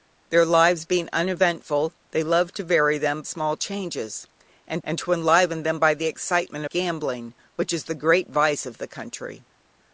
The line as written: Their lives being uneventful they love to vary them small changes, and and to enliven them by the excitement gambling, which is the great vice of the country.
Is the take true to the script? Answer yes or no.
yes